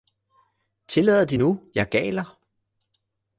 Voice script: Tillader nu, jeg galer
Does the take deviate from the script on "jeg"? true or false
false